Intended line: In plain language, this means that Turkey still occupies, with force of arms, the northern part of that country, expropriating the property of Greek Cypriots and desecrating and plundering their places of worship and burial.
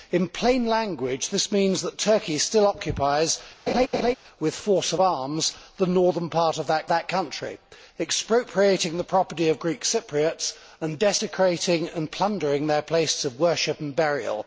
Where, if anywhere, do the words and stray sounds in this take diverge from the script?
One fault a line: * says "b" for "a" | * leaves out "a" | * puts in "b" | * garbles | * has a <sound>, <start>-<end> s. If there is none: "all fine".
* has a laugh, 3.7-4.1 s
* puts in "that"